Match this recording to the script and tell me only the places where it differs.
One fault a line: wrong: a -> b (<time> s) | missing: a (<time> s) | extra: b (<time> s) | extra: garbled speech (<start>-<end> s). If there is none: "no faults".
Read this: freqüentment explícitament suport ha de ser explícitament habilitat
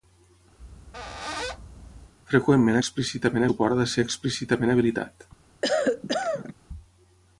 no faults